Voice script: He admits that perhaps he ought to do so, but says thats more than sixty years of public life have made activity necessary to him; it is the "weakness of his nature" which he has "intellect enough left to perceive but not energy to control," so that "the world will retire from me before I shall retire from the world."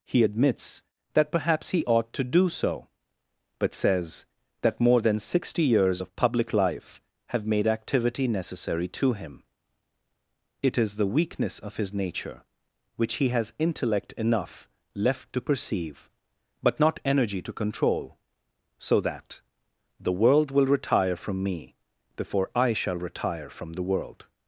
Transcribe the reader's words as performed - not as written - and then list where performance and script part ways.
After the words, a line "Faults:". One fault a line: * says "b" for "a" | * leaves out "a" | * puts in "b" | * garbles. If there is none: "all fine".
He admits that perhaps he ought to do so, but says that more than sixty years of public life have made activity necessary to him; it is the "weakness of his nature" which he has "intellect enough left to perceive but not energy to control," so that "the world will retire from me before I shall retire from the world."
Faults:
* says "that" for "thats"